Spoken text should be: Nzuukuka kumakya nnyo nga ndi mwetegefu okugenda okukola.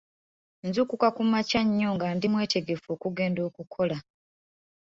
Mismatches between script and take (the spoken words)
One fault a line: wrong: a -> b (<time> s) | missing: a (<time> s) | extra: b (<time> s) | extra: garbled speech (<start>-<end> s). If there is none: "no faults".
no faults